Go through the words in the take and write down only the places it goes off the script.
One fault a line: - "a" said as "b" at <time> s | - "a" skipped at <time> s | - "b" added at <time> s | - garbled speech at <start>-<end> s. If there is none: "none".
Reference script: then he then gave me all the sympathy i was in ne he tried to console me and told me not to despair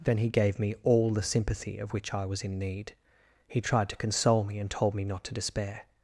- "then" skipped at 0.3 s
- "of which" added at 1.8 s
- "ne" said as "need" at 2.6 s